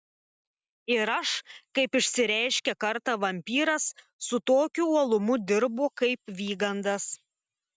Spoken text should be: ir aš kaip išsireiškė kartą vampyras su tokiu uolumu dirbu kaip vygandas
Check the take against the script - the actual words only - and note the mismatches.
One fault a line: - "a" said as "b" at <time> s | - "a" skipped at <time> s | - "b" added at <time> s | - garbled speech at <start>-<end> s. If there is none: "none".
none